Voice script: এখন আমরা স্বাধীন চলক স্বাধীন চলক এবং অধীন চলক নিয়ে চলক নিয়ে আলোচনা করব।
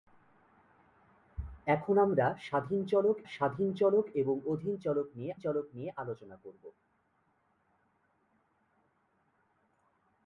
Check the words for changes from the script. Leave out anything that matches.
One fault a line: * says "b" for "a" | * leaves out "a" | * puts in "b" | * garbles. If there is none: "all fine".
all fine